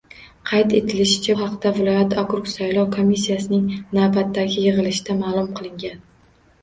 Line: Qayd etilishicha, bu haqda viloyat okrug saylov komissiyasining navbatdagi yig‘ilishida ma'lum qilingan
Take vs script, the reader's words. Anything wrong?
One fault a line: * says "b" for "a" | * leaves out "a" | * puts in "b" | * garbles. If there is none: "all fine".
* leaves out "bu"